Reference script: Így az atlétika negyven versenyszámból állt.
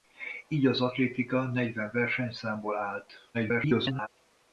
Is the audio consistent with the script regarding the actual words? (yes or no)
no